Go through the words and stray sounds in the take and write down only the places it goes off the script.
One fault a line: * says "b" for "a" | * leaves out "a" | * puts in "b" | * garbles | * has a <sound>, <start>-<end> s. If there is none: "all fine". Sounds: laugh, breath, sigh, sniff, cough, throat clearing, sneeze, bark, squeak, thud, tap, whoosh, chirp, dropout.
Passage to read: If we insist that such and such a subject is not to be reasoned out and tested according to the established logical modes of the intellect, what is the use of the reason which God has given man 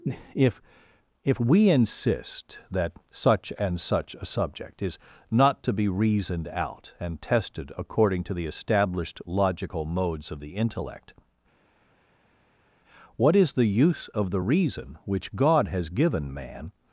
* puts in "if"